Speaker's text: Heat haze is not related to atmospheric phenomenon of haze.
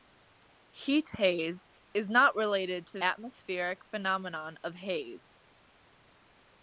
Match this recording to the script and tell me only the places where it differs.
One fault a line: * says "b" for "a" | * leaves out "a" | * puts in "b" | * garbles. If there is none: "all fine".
all fine